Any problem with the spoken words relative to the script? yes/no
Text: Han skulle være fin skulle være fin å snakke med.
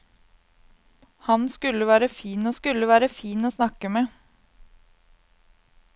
no